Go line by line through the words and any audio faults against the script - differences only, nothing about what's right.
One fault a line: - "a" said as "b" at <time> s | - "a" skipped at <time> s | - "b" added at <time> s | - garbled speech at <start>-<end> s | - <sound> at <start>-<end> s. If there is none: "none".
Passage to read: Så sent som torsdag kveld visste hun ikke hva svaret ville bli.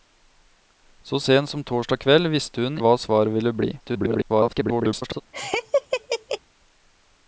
- "ikke" skipped at 2.8 s
- garbled speech at 3.8-5.2 s
- laugh at 5.3-6.4 s